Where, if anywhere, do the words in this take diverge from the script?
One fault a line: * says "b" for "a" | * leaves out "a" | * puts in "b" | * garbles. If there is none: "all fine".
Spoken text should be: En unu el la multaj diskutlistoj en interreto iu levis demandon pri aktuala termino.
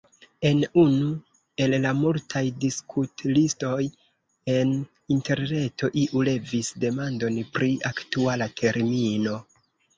all fine